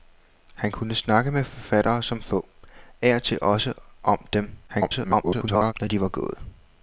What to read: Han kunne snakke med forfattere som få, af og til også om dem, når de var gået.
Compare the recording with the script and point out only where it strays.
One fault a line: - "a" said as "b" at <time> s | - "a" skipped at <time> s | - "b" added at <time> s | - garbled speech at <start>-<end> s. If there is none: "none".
- garbled speech at 4.7-5.7 s